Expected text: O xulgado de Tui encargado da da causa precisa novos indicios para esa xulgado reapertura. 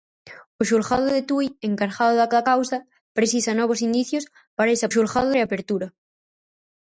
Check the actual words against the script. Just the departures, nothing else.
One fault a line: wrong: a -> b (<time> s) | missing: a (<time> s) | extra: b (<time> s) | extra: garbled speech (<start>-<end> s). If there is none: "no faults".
no faults